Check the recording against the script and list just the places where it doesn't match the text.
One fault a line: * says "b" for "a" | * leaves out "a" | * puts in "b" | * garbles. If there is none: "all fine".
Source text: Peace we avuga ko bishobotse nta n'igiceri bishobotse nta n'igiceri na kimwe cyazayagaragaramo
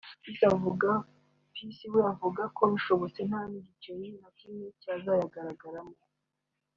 * leaves out "bishobotse nta n'igiceri"